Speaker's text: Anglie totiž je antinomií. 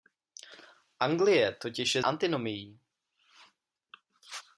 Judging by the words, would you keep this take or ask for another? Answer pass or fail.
pass